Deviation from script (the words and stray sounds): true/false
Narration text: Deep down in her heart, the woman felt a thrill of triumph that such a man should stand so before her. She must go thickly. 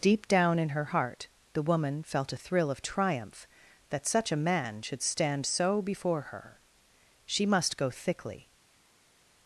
false